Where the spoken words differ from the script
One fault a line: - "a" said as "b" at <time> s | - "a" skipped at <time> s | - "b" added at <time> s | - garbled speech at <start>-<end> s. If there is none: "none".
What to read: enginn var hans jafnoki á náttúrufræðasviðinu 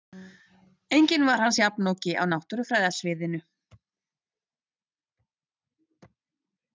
none